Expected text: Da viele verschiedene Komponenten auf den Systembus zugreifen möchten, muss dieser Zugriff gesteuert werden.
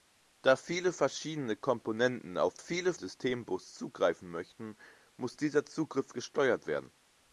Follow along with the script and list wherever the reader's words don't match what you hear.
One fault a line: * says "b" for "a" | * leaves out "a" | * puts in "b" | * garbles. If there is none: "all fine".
* says "viele" for "den"